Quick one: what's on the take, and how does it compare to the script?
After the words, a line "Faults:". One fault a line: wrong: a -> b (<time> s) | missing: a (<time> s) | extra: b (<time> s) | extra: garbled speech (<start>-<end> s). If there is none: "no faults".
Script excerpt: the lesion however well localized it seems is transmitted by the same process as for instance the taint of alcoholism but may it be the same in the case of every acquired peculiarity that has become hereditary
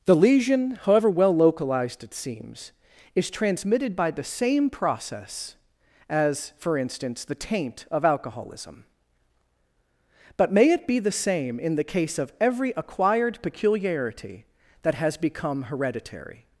the lesion however well localized it seems is transmitted by the same process as for instance the taint of alcoholism but may it be the same in the case of every acquired peculiarity that has become hereditary
Faults:
no faults